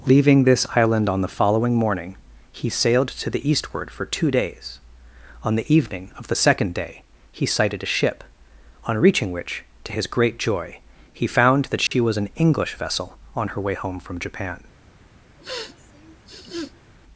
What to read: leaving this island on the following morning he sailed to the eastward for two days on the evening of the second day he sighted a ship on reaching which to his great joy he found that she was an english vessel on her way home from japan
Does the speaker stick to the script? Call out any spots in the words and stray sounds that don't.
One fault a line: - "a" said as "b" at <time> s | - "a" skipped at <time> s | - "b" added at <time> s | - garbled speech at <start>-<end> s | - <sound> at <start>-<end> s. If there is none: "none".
- dropout at 11.9-11.9 s
- sniff at 15.4-16.9 s